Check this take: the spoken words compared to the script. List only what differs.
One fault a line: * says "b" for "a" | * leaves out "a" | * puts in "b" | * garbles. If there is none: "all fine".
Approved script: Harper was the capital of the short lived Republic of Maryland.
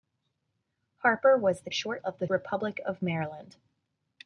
* says "short" for "capital"
* leaves out "short lived"